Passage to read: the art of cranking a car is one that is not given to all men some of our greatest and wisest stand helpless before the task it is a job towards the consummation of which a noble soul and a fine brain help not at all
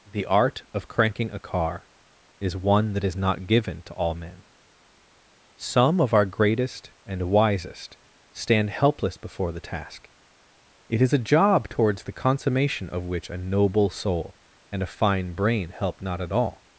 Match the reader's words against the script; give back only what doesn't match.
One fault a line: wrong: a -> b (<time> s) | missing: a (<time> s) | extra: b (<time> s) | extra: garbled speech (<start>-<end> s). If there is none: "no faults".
no faults